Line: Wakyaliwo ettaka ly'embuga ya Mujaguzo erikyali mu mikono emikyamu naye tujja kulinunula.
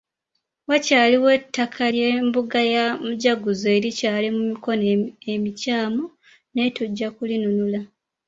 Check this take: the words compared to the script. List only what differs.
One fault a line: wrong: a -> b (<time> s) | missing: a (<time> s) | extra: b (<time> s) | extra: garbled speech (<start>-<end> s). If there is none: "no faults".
no faults